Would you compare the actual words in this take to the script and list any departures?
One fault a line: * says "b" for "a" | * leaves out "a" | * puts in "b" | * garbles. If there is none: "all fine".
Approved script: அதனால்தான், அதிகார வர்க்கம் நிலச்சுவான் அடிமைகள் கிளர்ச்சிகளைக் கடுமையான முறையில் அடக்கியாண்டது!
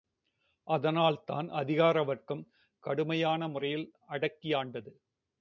* leaves out "நிலச்சுவான் அடிமைகள் கிளர்ச்சிகளைக்"